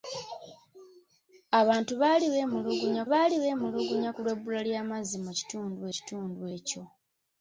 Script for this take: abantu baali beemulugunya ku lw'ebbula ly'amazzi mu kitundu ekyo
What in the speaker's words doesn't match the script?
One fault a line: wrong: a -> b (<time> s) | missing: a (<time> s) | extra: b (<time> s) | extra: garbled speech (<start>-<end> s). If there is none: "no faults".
extra: baali beemulugunya (3.1 s)
extra: kitundu (5.9 s)